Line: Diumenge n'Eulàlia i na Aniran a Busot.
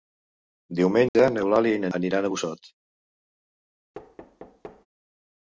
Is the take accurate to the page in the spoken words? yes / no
yes